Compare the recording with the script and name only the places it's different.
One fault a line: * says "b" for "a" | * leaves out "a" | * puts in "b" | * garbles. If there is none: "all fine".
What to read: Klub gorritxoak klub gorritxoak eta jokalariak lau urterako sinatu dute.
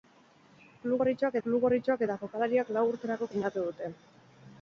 all fine